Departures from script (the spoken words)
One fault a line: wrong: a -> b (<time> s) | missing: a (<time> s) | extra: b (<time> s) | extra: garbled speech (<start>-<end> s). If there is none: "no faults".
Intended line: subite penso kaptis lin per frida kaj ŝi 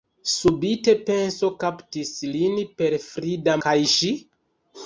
no faults